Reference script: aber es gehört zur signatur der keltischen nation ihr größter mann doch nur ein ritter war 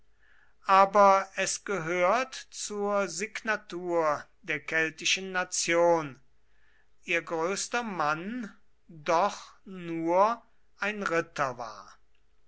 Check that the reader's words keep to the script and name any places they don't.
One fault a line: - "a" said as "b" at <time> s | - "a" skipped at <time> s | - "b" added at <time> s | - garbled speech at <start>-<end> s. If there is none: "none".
none